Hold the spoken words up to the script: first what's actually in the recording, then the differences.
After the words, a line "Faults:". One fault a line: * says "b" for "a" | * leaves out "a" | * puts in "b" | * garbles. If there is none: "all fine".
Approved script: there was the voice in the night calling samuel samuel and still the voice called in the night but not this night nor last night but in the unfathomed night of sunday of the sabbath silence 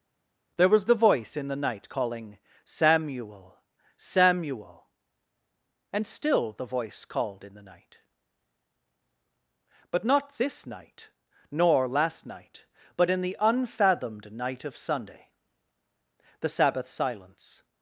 there was the voice in the night calling samuel samuel and still the voice called in the night but not this night nor last night but in the unfathomed night of sunday the sabbath silence
Faults:
* leaves out "of"